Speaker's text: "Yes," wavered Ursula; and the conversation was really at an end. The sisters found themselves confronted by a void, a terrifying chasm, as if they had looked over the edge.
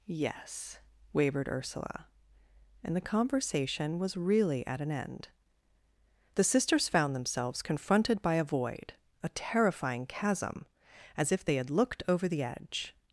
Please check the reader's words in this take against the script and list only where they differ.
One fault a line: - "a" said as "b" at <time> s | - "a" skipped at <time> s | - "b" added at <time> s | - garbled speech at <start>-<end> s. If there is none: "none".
none